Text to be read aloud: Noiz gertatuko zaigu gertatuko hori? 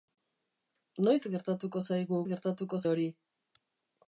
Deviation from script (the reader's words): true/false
false